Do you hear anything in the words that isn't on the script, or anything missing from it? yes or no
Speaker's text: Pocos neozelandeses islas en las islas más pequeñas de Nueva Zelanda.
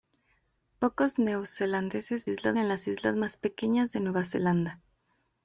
no